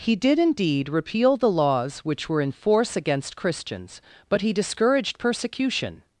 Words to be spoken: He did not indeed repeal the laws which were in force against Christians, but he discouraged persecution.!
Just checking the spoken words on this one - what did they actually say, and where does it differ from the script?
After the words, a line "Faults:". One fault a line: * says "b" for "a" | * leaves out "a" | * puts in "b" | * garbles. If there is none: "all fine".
He did indeed repeal the laws which were in force against Christians, but he discouraged persecution.!
Faults:
* leaves out "not"